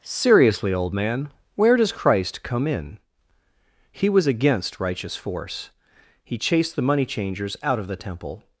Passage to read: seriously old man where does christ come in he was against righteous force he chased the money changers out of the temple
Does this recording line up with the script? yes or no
yes